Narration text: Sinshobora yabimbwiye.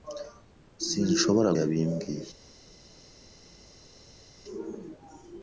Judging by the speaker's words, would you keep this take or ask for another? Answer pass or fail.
pass